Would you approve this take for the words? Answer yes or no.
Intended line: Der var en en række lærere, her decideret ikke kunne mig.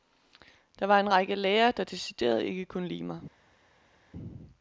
no